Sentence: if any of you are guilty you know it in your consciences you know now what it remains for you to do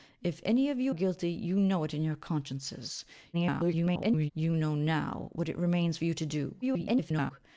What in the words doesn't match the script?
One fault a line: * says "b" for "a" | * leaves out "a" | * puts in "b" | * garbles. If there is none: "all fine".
* leaves out "are"
* garbles
* garbles